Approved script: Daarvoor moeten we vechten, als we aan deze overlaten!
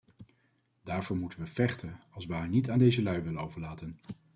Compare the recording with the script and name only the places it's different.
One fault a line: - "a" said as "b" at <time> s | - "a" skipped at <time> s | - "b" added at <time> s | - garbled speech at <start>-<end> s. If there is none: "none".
- "haar niet" added at 2.3 s
- "lui willen" added at 3.0 s